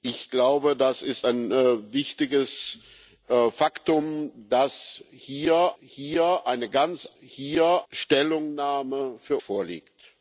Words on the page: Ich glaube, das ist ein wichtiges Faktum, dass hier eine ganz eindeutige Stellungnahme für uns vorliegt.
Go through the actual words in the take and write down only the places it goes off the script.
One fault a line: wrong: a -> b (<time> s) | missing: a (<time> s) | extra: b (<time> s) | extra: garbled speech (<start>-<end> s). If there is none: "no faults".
extra: hier (5.8 s)
wrong: eindeutige -> hier (7.2 s)
missing: uns (9.4 s)